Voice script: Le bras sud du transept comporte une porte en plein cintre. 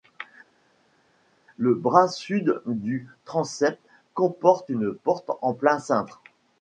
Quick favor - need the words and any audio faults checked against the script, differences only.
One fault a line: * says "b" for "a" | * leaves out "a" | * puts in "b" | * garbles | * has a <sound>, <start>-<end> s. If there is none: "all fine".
all fine